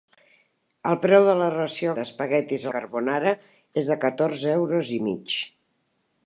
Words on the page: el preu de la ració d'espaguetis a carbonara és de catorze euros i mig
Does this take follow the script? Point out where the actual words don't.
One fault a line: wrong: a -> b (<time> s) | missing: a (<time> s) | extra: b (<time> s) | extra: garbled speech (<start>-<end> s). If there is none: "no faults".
no faults